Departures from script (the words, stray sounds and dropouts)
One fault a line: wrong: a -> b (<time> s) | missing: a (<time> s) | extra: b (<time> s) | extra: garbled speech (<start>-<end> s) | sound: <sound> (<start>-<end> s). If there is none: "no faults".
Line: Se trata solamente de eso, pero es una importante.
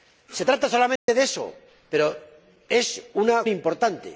sound: dropout (1.0-1.1 s)